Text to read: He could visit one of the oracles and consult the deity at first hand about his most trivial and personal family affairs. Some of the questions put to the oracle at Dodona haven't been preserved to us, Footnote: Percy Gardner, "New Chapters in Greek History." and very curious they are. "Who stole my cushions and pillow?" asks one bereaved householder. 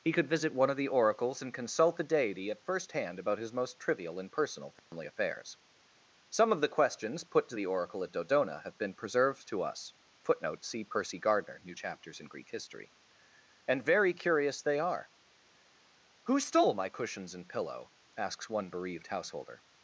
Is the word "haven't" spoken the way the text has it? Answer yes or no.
no